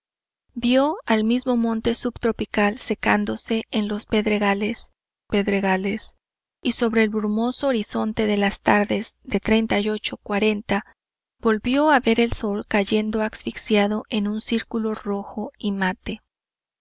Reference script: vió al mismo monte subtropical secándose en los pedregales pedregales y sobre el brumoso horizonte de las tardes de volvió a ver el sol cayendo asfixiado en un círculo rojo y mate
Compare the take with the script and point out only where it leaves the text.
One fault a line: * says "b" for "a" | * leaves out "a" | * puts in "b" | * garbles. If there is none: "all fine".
all fine